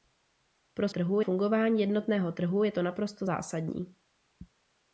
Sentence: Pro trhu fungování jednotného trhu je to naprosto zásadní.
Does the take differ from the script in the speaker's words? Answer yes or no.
no